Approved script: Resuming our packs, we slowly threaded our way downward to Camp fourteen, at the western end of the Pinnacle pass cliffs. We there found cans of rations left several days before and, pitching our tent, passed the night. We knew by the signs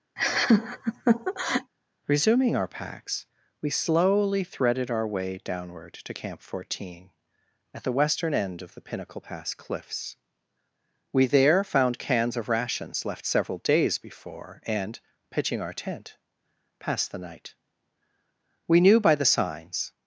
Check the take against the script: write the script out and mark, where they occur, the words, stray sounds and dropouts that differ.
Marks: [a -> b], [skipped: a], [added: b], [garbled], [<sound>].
[laugh] Resuming our packs, we slowly threaded our way downward to Camp fourteen, at the western end of the Pinnacle pass cliffs. We there found cans of rations left several days before and, pitching our tent, passed the night. We knew by the signs